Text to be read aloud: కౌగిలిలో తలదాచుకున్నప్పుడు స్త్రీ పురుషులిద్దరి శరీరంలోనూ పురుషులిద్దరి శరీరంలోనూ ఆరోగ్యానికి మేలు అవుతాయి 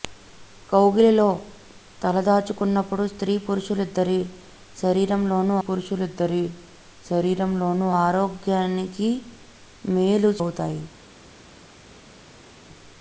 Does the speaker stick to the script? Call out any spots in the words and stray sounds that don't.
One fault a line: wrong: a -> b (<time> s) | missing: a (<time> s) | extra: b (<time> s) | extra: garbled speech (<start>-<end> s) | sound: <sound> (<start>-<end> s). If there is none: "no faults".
no faults